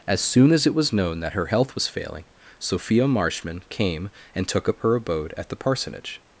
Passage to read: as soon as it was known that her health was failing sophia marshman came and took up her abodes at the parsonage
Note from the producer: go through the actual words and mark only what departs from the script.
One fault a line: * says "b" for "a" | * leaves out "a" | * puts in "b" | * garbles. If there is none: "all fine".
* says "abode" for "abodes"